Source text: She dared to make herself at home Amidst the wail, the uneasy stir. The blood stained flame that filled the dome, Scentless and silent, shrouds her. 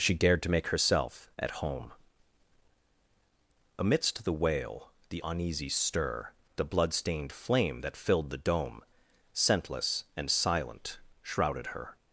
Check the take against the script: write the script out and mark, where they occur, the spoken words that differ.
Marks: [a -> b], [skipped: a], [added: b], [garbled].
She dared to make herself at home Amidst the wail, the uneasy stir. The blood stained flame that filled the dome, Scentless and silent, [shrouds -> shrouded] her.